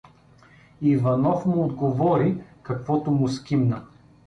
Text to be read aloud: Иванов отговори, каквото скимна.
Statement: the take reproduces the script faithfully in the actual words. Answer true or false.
false